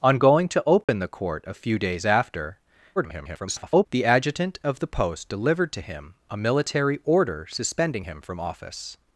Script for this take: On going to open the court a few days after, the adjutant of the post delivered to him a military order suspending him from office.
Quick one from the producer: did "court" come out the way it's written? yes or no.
yes